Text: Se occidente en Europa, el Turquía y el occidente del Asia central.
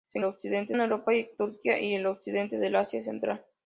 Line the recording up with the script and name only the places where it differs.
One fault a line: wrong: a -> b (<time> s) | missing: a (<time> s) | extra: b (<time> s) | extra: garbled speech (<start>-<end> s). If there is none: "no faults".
no faults